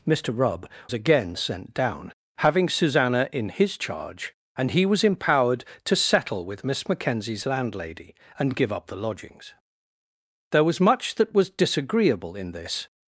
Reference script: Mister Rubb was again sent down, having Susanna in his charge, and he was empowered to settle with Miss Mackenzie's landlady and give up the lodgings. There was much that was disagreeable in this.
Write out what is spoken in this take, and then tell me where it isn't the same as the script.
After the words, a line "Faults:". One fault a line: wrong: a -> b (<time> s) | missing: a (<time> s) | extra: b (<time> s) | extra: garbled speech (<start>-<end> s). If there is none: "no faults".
Mister Rubb again sent down, having Susanna in his charge, and he was empowered to settle with Miss Mackenzie's landlady and give up the lodgings. There was much that was disagreeable in this.
Faults:
missing: was (0.7 s)